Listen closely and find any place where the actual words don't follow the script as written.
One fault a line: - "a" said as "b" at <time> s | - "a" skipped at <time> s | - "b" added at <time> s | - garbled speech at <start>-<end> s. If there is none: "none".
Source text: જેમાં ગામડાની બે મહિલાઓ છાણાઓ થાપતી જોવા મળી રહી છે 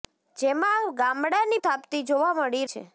- "બે મહિલાઓ છાણાઓ" skipped at 1.6 s
- "રહી" skipped at 2.7 s